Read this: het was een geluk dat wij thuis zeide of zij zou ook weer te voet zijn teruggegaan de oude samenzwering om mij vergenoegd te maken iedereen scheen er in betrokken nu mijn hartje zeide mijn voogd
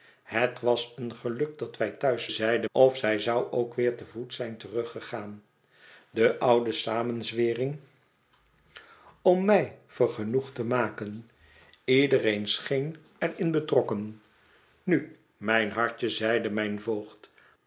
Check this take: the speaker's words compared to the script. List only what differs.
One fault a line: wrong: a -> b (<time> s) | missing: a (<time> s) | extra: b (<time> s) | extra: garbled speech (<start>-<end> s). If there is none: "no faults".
no faults